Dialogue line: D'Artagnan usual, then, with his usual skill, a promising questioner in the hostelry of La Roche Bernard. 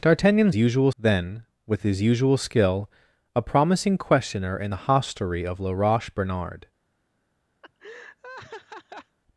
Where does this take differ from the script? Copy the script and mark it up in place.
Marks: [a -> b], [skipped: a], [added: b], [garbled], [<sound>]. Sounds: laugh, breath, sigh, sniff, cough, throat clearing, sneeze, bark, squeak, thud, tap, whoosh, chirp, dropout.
D'Artagnan usual, then, with his usual skill, a promising questioner in the hostelry of La Roche Bernard. [laugh]